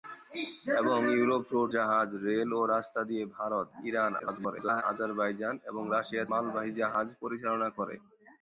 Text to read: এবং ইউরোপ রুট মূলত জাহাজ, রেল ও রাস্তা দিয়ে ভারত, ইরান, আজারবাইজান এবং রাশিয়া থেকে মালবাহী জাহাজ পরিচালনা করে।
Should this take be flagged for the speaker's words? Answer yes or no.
yes